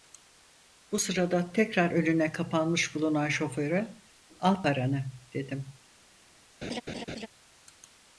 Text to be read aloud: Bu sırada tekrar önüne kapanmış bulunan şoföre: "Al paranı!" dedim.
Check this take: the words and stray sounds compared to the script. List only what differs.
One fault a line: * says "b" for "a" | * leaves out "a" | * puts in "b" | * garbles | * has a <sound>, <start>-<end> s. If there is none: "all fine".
* has a laugh, 6.6-7.3 s